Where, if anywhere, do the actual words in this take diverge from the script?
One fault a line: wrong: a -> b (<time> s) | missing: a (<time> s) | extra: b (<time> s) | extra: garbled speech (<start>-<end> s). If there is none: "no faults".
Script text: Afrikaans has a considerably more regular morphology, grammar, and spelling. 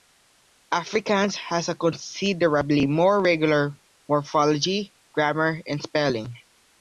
no faults